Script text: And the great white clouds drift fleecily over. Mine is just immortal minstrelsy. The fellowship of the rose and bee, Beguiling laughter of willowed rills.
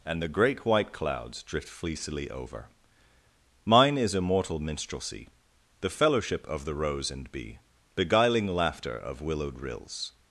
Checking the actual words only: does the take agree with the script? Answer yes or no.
no